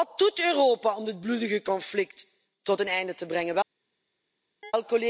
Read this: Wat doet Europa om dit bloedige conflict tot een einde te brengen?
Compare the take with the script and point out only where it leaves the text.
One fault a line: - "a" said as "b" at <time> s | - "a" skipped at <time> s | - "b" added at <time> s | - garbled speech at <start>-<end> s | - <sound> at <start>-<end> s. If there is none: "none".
- chirp at 4.6-4.7 s